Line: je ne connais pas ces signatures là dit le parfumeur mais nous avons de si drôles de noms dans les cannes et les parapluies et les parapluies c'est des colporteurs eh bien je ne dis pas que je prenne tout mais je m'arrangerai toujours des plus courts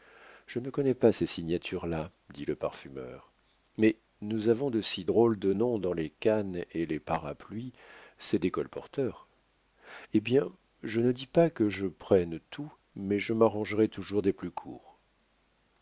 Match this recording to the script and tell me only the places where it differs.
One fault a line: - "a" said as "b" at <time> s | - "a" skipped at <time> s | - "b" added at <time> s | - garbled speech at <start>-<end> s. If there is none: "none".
- "et les parapluies" skipped at 7.7 s